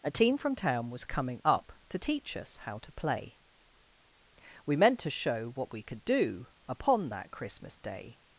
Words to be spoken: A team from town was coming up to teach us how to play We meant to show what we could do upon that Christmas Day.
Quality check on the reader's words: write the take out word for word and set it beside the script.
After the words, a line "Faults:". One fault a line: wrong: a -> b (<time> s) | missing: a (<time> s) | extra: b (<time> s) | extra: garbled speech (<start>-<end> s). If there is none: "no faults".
A team from town was coming up to teach us how to play We meant to show what we could do upon that Christmas Day.
Faults:
no faults